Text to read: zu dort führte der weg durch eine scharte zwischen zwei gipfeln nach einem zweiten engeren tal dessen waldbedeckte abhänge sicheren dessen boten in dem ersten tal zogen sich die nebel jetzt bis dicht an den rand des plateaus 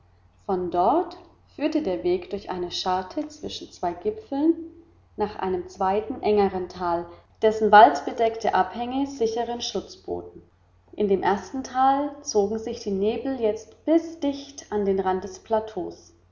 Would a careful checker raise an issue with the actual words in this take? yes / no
yes